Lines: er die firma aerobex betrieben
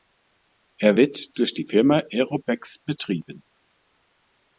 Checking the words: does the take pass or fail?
fail